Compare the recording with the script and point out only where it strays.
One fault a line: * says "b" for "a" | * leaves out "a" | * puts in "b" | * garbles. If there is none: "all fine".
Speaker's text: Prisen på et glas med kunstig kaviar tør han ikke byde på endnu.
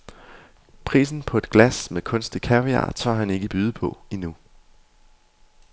all fine